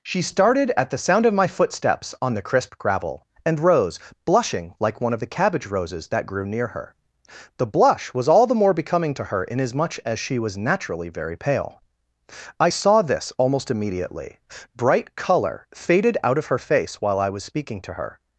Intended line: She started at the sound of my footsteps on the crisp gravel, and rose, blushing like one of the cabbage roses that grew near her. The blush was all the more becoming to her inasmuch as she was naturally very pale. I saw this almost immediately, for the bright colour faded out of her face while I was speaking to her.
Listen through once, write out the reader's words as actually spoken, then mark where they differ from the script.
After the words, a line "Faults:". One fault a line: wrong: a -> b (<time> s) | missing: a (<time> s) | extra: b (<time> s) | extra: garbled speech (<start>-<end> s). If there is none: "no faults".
She started at the sound of my footsteps on the crisp gravel, and rose, blushing like one of the cabbage roses that grew near her. The blush was all the more becoming to her inasmuch as she was naturally very pale. I saw this almost immediately, bright colour faded out of her face while I was speaking to her.
Faults:
missing: for the (14.4 s)